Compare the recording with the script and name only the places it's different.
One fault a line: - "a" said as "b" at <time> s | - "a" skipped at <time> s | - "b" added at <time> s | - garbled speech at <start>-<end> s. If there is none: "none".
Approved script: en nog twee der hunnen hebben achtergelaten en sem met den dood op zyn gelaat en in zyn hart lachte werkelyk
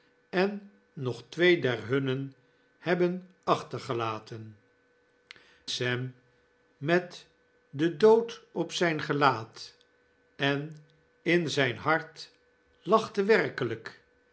- "en" skipped at 4.6 s